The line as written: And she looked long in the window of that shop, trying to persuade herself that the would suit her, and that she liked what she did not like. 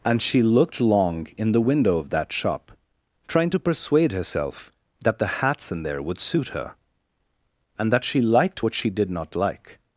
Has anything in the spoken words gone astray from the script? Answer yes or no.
yes